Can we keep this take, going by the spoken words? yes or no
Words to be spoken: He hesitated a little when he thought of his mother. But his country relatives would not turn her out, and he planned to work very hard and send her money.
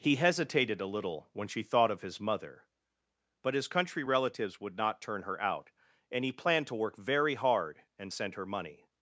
no